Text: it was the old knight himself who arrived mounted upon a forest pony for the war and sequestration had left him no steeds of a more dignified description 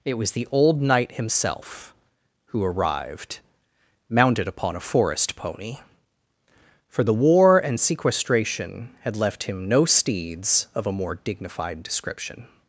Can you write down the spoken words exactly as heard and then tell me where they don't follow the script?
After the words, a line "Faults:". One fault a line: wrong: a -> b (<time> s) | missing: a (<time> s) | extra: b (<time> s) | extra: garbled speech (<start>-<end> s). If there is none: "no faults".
it was the old knight himself who arrived mounted upon a forest pony for the war and sequestration had left him no steeds of a more dignified description
Faults:
no faults